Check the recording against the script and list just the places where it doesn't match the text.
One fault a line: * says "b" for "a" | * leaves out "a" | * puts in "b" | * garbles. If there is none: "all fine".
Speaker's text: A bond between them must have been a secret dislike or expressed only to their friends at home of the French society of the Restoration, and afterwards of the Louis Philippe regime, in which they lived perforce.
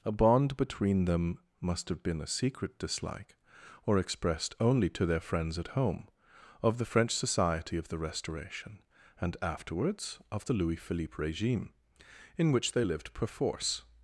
all fine